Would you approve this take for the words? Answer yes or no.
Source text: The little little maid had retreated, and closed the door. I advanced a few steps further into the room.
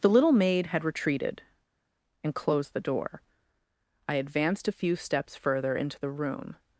no